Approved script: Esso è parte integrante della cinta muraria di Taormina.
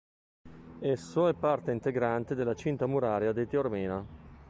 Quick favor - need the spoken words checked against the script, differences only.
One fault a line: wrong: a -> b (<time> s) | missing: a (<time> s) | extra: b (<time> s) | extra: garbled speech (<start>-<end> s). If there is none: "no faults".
no faults